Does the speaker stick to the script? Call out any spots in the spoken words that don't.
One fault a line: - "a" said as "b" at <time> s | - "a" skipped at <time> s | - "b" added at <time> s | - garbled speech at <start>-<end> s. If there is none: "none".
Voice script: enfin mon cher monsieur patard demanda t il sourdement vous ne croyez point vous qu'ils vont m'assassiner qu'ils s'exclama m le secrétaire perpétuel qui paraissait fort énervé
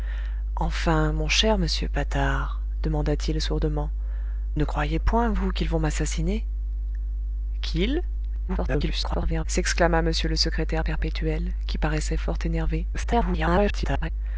- "vous" skipped at 3.9 s
- garbled speech at 8.5-9.5 s
- garbled speech at 12.9-14.1 s